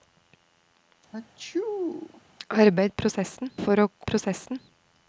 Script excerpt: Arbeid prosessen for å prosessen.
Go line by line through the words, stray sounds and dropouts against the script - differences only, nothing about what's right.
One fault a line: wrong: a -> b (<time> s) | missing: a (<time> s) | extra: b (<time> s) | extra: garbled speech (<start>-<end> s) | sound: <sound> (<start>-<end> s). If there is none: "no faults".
sound: sneeze (1.1-2.2 s)